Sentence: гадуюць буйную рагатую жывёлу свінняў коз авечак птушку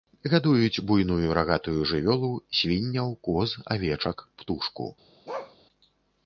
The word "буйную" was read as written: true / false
true